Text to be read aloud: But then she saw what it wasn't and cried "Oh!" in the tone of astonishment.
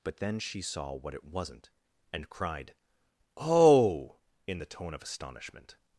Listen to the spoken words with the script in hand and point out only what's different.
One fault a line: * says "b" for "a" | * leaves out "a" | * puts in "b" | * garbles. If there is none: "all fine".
all fine